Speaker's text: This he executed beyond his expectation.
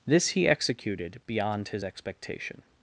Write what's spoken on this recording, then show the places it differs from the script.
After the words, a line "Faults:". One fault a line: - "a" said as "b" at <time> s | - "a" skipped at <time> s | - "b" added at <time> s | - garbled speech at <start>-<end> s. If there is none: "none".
This he executed beyond his expectation.
Faults:
none